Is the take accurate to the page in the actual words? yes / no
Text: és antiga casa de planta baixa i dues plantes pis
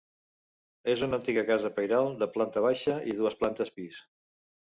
no